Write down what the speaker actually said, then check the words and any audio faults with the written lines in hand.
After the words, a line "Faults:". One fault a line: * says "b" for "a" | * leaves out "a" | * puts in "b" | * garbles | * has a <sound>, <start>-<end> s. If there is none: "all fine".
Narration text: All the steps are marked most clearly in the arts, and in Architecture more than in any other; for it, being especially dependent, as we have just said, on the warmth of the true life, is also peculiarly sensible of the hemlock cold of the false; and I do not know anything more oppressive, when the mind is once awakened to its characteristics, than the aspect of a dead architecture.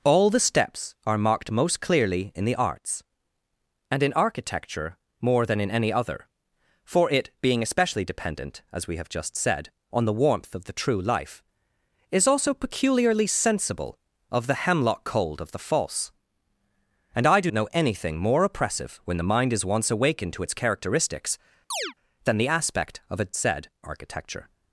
All the steps are marked most clearly in the arts, and in Architecture more than in any other; for it, being especially dependent, as we have just said, on the warmth of the true life, is also peculiarly sensible of the hemlock cold of the false; and I do know anything more oppressive, when the mind is once awakened to its characteristics, than the aspect of a said architecture.
Faults:
* leaves out "not"
* has a chirp, 21.7-21.9 s
* says "said" for "dead"